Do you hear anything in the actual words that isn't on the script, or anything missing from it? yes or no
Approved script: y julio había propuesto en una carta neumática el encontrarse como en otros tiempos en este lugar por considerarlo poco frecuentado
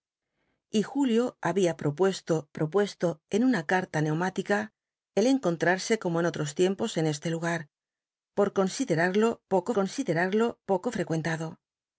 yes